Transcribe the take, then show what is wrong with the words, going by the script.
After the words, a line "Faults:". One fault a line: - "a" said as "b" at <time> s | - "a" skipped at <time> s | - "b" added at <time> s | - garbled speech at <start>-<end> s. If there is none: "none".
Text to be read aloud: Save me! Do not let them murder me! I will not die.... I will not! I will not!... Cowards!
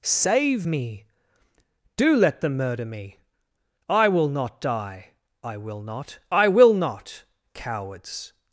Save me! Do let them murder me! I will not die.... I will not! I will not!... Cowards!
Faults:
- "not" skipped at 2.1 s